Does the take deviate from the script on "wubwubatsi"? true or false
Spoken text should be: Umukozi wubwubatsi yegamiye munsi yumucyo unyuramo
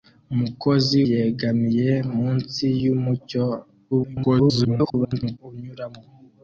true